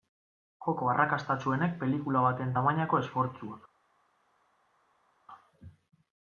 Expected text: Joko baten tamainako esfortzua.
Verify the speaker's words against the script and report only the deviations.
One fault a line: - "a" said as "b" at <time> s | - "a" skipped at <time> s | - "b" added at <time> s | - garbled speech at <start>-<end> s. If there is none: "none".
- "arrakastatsuenek pelikula" added at 0.9 s